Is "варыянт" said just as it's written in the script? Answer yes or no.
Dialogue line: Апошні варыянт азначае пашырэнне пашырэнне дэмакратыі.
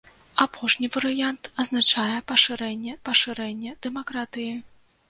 yes